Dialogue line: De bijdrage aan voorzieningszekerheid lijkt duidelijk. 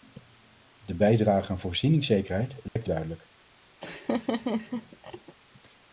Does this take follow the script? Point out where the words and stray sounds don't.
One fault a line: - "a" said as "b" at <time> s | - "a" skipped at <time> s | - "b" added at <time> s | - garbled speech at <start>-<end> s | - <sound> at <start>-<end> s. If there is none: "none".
- dropout at 2.7-2.8 s
- laugh at 3.8-5.3 s